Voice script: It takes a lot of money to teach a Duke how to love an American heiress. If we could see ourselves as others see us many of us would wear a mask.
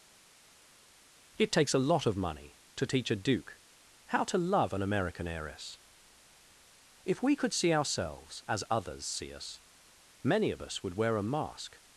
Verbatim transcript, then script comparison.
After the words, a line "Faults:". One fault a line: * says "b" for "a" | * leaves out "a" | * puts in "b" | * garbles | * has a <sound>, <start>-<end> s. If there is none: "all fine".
It takes a lot of money to teach a Duke how to love an American heiress. If we could see ourselves as others see us many of us would wear a mask.
Faults:
all fine